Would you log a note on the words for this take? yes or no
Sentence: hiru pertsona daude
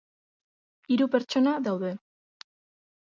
no